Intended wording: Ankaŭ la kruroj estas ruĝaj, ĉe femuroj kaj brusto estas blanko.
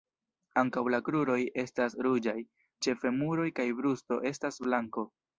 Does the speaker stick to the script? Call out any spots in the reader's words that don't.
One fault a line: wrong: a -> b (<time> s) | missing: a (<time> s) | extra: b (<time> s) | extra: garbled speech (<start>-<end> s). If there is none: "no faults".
no faults